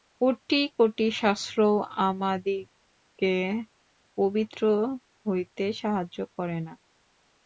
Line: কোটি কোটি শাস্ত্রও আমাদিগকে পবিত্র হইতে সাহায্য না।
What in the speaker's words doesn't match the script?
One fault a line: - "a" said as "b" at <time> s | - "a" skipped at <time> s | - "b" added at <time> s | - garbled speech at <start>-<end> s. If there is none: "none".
- "করে" added at 6.4 s